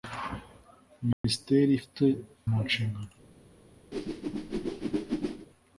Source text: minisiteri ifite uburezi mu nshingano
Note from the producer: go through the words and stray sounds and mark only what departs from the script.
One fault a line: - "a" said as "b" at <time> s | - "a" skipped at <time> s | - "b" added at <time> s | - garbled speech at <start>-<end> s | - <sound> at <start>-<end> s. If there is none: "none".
- dropout at 1.1-1.2 s
- "uburezi" skipped at 2.0 s
- whoosh at 3.9-5.5 s